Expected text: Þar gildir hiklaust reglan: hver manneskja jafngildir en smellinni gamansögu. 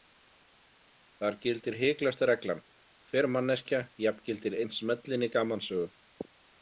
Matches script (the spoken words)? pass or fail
pass